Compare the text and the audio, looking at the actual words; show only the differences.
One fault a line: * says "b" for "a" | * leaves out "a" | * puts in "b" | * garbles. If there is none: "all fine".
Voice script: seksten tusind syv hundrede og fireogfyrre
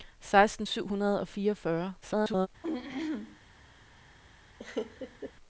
* leaves out "tusind"
* garbles